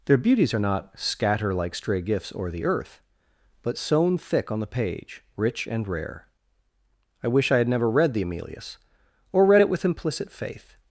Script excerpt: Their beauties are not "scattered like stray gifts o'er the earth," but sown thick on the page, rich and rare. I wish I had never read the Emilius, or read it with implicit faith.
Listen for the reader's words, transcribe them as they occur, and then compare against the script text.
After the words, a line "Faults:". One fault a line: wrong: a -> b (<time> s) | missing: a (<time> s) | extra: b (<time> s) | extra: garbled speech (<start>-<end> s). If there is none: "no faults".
Their beauties are not "scatter like stray gifts o'er the earth," but sown thick on the page, rich and rare. I wish I had never read the Emilius, or read it with implicit faith.
Faults:
wrong: scattered -> scatter (1.0 s)